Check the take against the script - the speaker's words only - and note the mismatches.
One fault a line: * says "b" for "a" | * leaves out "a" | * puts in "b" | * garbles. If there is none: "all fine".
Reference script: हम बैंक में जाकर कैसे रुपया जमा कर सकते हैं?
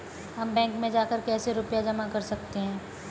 all fine